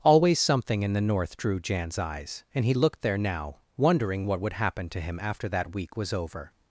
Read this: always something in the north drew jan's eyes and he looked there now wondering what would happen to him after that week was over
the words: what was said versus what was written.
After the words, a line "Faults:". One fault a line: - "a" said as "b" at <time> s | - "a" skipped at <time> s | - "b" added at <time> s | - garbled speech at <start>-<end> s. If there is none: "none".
always something in the north drew jan's eyes and he looked there now wondering what would happen to him after that week was over
Faults:
none